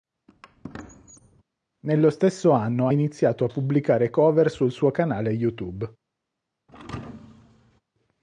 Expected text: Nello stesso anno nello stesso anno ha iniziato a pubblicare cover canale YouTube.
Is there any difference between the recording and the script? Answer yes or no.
yes